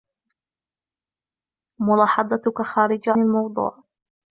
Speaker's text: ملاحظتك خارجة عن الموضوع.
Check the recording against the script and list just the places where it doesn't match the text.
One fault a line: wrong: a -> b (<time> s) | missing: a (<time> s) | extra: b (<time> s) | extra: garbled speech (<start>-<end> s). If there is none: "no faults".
missing: عن (3.1 s)